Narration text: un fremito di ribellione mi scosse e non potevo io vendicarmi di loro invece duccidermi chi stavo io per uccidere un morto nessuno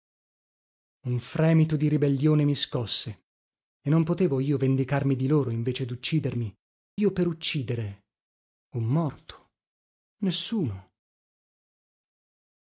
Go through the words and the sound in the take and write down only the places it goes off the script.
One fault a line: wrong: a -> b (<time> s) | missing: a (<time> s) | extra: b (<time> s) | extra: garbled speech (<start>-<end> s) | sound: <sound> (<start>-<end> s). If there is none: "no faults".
missing: chi stavo (6.5 s)